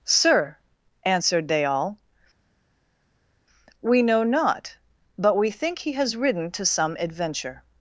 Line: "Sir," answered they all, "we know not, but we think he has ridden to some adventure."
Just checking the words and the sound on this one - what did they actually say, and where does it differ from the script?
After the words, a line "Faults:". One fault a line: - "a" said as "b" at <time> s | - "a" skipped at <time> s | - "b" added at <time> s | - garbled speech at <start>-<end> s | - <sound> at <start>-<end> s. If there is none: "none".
"Sir," answered they all, "we know not, but we think he has ridden to some adventure."
Faults:
none